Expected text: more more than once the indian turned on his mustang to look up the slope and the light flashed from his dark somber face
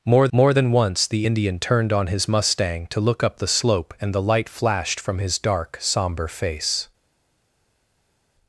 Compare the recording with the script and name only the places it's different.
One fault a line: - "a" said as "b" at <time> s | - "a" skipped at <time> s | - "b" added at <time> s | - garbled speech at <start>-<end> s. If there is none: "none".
none